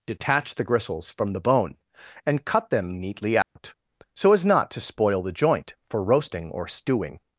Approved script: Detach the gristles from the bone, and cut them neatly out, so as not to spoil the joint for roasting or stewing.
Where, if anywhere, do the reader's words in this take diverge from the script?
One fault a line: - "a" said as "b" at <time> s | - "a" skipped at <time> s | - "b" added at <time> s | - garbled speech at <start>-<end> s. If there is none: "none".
none